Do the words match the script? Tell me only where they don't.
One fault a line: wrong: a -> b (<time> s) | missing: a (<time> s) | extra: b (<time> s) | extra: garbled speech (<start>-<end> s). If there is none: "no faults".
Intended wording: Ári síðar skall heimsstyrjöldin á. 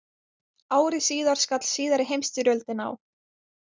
extra: síðari (1.7 s)